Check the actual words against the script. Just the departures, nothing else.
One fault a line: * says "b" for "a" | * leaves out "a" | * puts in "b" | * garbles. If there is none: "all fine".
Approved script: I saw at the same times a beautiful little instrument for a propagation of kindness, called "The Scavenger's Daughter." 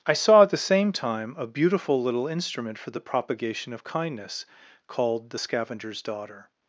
* says "time" for "times"
* says "the" for "a"